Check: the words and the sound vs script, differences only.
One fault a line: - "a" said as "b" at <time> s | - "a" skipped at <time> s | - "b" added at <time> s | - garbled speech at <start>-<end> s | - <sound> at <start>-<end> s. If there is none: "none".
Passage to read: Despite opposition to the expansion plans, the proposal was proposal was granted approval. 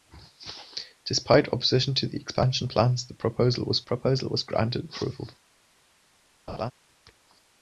- laugh at 6.5-6.7 s